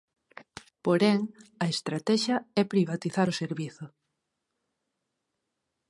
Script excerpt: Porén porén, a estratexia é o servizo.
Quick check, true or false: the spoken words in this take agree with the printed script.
false